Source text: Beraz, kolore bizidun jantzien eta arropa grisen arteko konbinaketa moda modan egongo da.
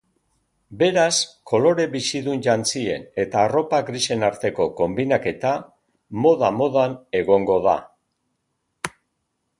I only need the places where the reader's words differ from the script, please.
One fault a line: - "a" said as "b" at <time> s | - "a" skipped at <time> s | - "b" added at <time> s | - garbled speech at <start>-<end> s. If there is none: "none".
none